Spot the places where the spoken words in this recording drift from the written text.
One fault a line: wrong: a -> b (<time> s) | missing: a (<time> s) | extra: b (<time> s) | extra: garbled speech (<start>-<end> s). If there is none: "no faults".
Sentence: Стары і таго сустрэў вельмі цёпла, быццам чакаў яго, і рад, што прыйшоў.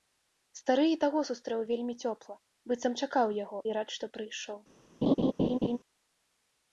no faults